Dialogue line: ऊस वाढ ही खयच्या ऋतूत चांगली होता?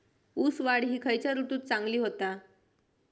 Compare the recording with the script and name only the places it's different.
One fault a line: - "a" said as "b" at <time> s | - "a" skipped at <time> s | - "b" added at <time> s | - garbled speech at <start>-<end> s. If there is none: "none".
none